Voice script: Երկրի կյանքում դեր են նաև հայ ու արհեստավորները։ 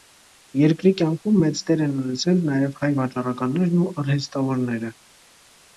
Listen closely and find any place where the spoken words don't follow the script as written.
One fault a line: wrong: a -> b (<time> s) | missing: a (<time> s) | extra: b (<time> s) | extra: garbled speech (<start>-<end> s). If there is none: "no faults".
extra: մեծ (1.4 s)
extra: ունեցել (2.0 s)
extra: վաճառականներն (3.0 s)